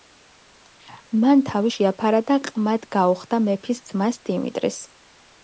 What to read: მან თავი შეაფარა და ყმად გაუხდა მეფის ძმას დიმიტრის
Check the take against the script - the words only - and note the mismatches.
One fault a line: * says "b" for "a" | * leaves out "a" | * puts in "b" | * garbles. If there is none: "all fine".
all fine